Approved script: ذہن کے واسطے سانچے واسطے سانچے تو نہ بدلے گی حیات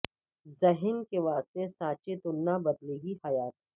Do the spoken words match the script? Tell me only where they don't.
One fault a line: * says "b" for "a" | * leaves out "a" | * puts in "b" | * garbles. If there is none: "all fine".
* leaves out "واسطے سانچے"